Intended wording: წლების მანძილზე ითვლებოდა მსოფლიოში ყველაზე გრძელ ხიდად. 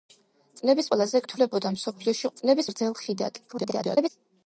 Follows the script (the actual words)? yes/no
no